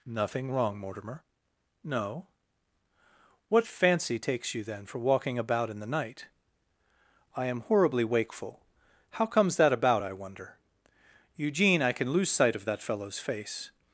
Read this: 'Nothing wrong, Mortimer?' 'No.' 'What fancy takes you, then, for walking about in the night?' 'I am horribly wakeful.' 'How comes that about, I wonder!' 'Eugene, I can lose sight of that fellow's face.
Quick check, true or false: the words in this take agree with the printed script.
true